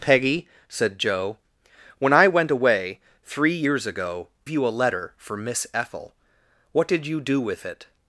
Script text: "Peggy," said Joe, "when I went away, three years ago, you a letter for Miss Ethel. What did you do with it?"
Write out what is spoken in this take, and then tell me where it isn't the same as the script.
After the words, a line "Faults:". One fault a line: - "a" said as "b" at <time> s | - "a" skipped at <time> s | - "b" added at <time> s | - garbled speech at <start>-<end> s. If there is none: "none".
"Peggy," said Joe, "when I went away, three years ago, you a letter for Miss Ethel. What did you do with it?"
Faults:
none